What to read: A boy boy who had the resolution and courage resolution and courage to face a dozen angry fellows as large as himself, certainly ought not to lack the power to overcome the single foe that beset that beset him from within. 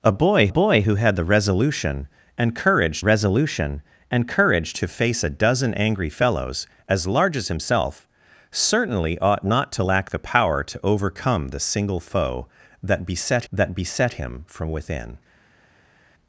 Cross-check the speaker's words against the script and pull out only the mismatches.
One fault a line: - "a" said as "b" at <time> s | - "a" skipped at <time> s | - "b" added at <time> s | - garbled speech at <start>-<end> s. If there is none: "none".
none